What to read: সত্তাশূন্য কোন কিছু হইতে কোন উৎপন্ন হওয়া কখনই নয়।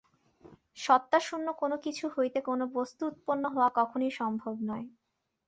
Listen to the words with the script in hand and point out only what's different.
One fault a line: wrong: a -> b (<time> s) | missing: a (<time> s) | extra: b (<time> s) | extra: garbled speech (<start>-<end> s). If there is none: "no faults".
extra: বস্তু (2.7 s)
extra: সম্ভব (4.2 s)